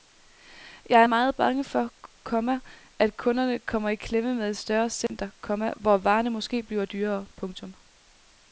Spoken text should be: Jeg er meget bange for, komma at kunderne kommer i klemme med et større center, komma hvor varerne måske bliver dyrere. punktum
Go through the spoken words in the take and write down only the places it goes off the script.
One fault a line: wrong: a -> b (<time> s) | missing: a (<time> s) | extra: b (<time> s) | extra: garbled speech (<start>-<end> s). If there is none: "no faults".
no faults